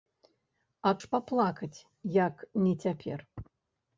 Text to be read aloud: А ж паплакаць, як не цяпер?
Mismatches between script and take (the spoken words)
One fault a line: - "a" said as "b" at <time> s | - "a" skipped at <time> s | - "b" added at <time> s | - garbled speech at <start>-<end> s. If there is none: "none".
none